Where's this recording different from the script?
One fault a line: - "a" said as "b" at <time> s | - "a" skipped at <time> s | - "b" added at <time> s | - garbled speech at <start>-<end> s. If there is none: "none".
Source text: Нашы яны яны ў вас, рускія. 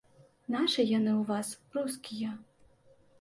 - "яны" skipped at 1.1 s